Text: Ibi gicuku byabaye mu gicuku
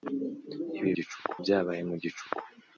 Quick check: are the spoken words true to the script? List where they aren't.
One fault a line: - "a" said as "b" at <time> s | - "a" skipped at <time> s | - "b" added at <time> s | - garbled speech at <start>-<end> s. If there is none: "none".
none